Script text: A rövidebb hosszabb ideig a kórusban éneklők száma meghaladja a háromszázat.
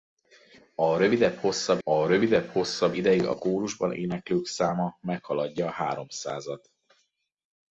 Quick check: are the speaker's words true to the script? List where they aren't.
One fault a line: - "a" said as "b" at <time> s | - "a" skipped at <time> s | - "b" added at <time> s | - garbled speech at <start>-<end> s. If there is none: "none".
- "a rövidebb hosszabb" added at 1.8 s